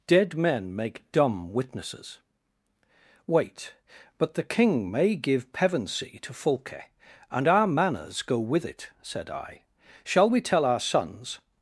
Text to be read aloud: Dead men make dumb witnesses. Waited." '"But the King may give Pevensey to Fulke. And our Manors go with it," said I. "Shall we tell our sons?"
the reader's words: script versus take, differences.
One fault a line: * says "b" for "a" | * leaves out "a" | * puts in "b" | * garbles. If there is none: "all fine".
* says "Wait" for "Waited"